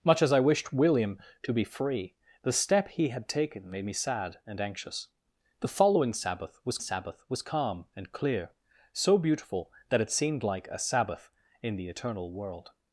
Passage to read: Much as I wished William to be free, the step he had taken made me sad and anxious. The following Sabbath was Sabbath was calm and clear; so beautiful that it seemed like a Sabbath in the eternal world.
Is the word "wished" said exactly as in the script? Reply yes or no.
yes